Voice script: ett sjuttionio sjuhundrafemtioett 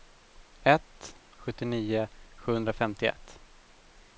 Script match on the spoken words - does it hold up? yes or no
yes